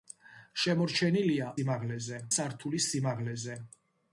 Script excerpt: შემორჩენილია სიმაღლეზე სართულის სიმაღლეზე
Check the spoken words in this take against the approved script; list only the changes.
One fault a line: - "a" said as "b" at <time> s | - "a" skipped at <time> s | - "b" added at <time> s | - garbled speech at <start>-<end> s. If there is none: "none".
none